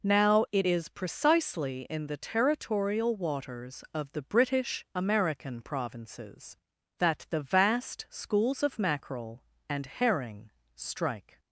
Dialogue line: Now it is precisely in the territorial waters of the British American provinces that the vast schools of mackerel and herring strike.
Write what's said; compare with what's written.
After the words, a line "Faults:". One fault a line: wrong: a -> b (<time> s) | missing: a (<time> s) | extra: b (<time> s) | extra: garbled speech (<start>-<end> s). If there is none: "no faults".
Now it is precisely in the territorial waters of the British American provinces that the vast schools of mackerel and herring strike.
Faults:
no faults